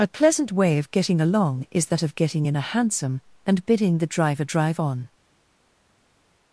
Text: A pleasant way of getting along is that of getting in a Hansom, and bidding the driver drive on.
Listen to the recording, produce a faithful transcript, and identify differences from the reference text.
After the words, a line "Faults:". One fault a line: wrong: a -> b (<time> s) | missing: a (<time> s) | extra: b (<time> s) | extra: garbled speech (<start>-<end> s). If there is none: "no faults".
A pleasant way of getting along is that of getting in a Hansom, and bidding the driver drive on.
Faults:
no faults